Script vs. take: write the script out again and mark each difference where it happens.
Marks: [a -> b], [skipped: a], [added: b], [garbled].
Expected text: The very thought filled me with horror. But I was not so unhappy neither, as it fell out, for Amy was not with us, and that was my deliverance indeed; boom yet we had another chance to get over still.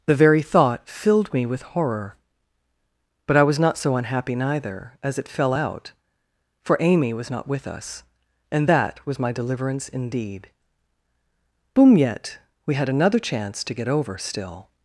The very thought filled me with horror. But I was not so unhappy neither, as it fell out, for Amy was not with us, and that was my deliverance indeed; boom yet we had another chance to get over still.